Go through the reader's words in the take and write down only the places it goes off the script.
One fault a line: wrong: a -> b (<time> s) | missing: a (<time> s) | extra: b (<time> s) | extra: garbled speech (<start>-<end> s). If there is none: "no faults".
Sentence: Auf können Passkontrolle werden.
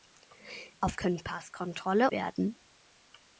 no faults